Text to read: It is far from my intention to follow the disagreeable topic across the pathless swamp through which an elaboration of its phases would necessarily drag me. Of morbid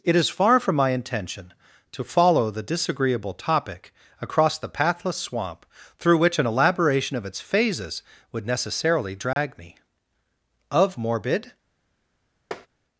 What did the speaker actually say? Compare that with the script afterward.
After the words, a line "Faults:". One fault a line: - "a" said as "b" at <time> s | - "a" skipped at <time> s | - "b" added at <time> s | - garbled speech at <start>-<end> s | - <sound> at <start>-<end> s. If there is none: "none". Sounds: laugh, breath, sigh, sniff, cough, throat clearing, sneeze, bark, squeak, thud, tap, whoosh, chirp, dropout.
It is far from my intention to follow the disagreeable topic across the pathless swamp through which an elaboration of its phases would necessarily drag me. Of morbid
Faults:
- dropout at 9.3-9.4 s
- tap at 12.5-12.7 s